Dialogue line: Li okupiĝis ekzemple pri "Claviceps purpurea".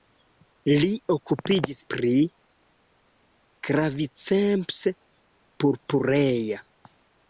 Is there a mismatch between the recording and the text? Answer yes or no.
yes